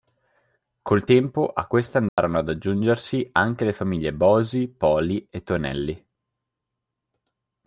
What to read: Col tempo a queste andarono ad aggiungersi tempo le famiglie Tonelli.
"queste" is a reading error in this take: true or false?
false